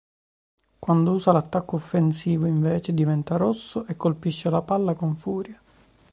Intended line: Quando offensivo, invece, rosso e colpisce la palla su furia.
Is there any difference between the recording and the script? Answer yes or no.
yes